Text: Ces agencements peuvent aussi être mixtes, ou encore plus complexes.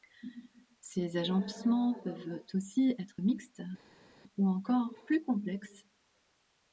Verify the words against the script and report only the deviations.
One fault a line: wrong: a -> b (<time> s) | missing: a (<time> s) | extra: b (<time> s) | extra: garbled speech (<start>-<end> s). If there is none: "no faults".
no faults